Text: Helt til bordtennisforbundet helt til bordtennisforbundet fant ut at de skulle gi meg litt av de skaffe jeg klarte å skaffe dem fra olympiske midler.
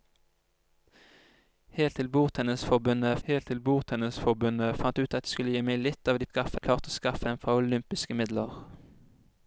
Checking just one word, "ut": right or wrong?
right